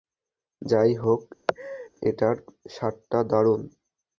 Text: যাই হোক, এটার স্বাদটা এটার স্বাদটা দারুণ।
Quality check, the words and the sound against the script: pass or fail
fail